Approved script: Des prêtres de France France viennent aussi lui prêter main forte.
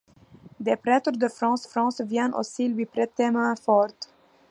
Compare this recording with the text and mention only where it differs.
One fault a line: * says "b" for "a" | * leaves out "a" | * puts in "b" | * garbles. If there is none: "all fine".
all fine